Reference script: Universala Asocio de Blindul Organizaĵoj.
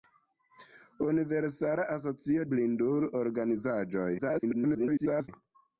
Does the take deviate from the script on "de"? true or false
true